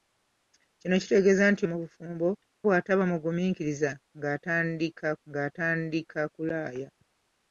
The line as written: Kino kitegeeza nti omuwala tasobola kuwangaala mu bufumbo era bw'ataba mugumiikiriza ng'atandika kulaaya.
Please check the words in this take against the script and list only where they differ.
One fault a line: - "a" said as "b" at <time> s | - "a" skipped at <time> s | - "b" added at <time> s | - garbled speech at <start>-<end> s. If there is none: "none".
- "omuwala tasobola kuwangaala" skipped at 1.6 s
- "era" skipped at 2.3 s
- "ng'atandika" added at 5.3 s